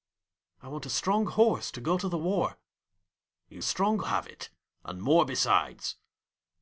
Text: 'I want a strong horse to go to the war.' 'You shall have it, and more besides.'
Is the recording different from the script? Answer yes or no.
yes